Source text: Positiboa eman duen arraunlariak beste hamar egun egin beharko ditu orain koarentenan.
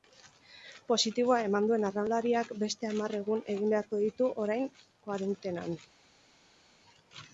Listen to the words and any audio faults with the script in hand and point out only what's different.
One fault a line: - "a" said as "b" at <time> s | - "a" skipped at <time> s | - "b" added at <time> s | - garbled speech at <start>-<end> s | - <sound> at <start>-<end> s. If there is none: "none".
none